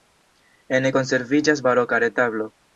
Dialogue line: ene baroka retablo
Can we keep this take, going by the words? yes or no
no